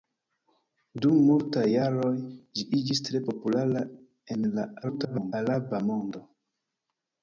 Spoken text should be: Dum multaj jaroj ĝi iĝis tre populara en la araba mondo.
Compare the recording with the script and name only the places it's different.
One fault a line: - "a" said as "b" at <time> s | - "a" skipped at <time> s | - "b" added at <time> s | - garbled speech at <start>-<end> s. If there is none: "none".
- garbled speech at 4.8-5.3 s